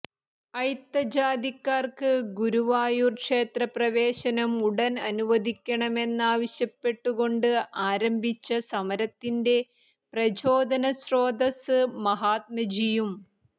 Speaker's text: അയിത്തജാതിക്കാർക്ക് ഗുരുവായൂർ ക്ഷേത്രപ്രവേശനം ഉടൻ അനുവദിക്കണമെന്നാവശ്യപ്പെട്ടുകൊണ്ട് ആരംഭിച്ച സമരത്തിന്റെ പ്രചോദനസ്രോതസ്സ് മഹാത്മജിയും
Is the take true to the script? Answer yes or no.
yes